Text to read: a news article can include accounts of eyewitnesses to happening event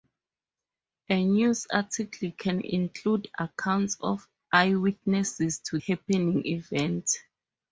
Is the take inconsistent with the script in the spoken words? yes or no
no